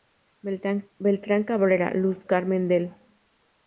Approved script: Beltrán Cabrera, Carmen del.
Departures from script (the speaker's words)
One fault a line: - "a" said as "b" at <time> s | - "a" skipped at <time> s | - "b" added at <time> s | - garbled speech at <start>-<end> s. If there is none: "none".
- "Luz" added at 1.9 s